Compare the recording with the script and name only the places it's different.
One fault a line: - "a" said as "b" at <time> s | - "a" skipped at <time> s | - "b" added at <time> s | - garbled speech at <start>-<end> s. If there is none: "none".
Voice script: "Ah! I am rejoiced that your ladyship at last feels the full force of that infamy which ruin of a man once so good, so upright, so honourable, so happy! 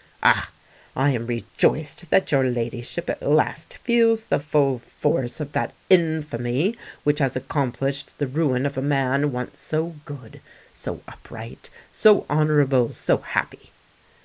- "has accomplished the" added at 7.2 s